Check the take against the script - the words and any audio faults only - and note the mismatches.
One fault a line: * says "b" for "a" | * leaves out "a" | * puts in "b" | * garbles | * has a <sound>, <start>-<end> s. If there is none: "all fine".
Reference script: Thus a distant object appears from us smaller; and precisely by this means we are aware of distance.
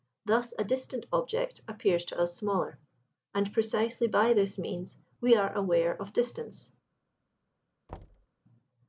* says "to" for "from"
* has a thud, 7.9-8.3 s